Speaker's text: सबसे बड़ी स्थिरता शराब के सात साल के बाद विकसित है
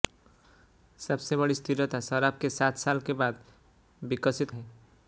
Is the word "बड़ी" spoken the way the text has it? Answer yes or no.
yes